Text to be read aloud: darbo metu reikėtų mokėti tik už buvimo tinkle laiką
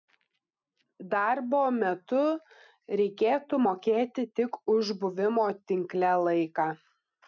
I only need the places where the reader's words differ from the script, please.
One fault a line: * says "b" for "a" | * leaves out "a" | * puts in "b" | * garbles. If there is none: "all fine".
all fine